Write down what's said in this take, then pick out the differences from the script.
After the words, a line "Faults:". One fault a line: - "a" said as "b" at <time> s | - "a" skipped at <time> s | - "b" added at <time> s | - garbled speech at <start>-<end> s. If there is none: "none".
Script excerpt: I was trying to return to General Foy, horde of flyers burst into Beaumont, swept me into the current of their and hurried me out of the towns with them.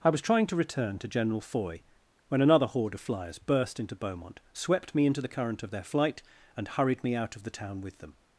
I was trying to return to General Foy, when another horde of flyers burst into Beaumont, swept me into the current of their flight, and hurried me out of the town with them.
Faults:
- "when another" added at 2.3 s
- "flight" added at 5.8 s
- "towns" said as "town" at 7.5 s